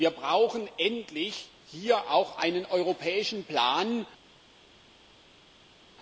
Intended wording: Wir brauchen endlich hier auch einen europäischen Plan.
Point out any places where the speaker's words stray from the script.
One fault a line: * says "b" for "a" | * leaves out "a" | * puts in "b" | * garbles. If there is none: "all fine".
all fine